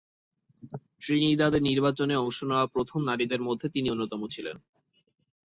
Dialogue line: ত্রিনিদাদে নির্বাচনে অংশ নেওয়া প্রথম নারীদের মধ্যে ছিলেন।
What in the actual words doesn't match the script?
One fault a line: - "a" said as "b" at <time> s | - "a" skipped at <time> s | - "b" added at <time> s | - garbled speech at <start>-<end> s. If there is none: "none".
- "তিনি অন্যতম" added at 3.7 s